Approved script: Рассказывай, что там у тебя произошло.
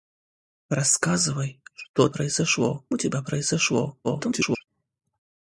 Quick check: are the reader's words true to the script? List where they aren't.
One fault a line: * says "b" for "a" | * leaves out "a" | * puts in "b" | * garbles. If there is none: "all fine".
* says "произошло" for "там"
* garbles